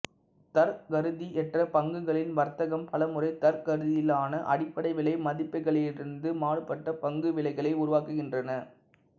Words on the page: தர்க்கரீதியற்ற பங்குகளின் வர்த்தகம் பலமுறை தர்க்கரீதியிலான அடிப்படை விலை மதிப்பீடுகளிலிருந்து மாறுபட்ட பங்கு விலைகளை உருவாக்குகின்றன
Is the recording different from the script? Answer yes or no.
no